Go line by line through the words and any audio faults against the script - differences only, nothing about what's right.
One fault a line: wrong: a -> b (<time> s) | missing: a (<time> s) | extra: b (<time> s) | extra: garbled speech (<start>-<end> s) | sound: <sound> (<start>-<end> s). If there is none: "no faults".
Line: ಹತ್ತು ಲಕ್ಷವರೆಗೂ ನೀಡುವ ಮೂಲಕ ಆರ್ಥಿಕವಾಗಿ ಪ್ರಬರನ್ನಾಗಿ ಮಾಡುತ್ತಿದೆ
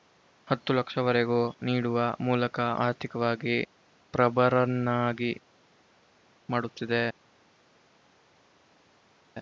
no faults